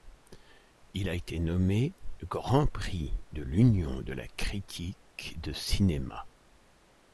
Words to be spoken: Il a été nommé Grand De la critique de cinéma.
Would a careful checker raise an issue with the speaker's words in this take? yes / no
yes